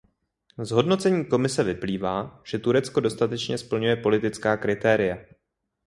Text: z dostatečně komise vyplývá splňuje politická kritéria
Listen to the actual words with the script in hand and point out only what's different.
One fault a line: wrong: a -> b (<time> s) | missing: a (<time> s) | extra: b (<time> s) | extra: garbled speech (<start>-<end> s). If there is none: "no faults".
wrong: dostatečně -> hodnocení (0.7 s)
extra: že turecko dostatečně (2.5 s)